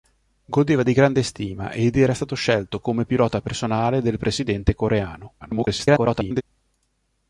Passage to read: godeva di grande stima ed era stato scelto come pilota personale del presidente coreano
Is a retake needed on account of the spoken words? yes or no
yes